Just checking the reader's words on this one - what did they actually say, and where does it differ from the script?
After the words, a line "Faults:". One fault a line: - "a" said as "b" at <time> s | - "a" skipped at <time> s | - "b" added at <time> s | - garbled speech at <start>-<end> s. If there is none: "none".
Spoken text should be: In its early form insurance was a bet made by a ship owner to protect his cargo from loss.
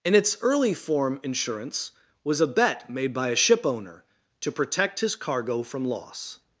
In its early form insurance was a bet made by a ship owner to protect his cargo from loss.
Faults:
none